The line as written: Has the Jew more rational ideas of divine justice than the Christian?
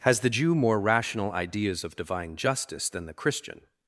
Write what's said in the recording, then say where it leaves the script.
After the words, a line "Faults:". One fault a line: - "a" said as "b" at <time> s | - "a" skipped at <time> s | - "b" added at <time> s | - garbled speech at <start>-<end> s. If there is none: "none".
Has the Jew more rational ideas of divine justice than the Christian?
Faults:
none